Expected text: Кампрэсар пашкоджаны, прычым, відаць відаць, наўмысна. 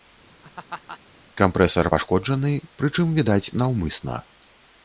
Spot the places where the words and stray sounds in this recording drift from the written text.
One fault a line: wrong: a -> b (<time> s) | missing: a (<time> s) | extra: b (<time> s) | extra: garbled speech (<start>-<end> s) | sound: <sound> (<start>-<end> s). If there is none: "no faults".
sound: laugh (0.3-1.0 s)
missing: відаць (3.5 s)